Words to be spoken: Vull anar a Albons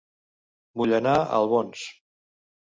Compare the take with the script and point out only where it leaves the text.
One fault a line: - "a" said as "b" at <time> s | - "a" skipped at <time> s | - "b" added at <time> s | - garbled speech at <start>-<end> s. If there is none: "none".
none